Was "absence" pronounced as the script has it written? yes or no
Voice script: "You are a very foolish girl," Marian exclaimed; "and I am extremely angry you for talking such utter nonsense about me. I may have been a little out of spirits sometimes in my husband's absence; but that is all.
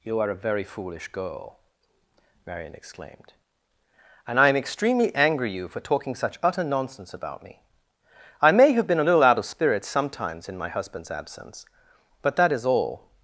yes